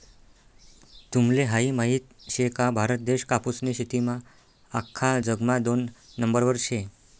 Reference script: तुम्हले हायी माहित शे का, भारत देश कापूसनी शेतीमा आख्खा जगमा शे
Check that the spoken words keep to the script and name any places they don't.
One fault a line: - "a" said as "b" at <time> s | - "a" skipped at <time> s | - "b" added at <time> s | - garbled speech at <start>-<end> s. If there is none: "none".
- "दोन नंबरवर" added at 5.6 s